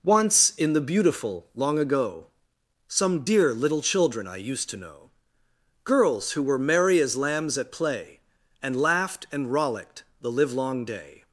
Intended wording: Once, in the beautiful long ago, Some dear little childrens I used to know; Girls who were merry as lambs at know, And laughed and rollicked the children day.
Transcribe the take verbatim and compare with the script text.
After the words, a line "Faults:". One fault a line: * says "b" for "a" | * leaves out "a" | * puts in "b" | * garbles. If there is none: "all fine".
Once, in the beautiful long ago, Some dear little children I used to know; Girls who were merry as lambs at play, And laughed and rollicked the livelong day.
Faults:
* says "children" for "childrens"
* says "play" for "know"
* says "livelong" for "children"